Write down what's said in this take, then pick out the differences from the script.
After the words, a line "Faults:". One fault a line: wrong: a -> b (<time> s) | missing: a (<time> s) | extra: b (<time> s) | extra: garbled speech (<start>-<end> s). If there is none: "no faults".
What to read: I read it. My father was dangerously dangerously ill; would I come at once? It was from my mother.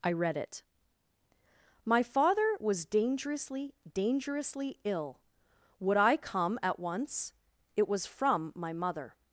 I read it. My father was dangerously dangerously ill; would I come at once? It was from my mother.
Faults:
no faults